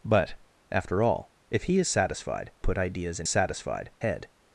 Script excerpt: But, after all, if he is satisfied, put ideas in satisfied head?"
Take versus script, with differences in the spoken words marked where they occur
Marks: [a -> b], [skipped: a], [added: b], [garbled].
But, after all, if he is satisfied, put ideas in satisfied head?"